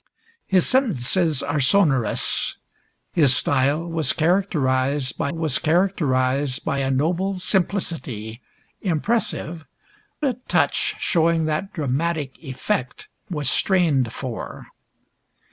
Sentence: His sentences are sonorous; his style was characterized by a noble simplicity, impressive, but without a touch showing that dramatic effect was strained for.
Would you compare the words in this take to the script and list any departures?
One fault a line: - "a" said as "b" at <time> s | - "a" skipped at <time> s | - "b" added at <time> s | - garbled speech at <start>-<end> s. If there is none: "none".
- "was characterized by" added at 5.3 s
- "but without" skipped at 9.6 s